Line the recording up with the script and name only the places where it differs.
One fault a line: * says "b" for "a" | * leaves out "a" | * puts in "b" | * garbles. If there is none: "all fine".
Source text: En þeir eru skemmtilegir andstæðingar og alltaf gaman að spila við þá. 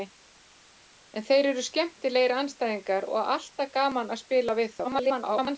* garbles